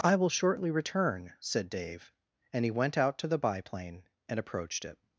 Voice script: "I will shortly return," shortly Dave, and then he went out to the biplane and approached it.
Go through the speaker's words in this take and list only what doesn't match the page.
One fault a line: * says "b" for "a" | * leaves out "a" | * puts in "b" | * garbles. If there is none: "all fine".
* says "said" for "shortly"
* leaves out "then"